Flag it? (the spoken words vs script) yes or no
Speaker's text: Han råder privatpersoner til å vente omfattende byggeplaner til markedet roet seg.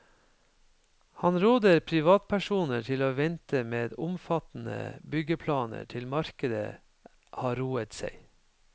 yes